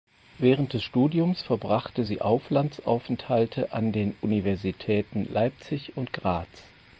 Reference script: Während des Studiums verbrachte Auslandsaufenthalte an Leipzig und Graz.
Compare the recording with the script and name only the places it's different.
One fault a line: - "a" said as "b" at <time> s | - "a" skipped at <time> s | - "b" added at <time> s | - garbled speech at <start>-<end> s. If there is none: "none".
- "sie" added at 2.0 s
- "den Universitäten" added at 3.9 s